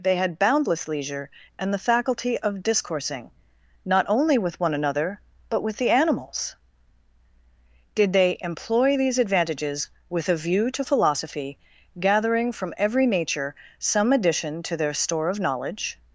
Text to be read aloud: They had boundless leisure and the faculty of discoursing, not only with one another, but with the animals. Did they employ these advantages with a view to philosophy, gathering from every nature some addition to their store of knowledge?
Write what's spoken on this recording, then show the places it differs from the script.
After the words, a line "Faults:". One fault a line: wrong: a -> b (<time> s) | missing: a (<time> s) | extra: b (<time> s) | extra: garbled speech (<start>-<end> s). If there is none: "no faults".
They had boundless leisure and the faculty of discoursing, not only with one another, but with the animals. Did they employ these advantages with a view to philosophy, gathering from every nature some addition to their store of knowledge?
Faults:
no faults